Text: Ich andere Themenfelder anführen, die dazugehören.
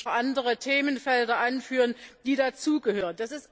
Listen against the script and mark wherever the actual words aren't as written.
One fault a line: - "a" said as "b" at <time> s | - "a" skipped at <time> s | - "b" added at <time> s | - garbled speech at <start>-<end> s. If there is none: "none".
none